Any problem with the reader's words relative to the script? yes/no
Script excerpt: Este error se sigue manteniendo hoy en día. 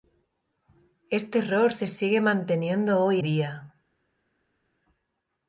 yes